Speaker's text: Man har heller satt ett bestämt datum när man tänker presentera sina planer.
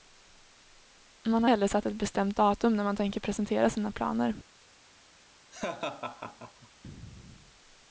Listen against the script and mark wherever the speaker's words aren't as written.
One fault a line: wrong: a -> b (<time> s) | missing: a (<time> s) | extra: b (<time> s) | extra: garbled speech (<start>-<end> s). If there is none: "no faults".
no faults